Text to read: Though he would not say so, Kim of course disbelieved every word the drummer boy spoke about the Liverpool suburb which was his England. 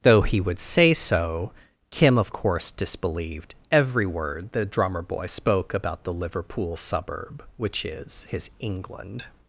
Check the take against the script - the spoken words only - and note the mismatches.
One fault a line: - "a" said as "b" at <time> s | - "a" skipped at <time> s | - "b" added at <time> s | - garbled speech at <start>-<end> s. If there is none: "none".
- "not" skipped at 0.6 s
- "was" said as "is" at 7.8 s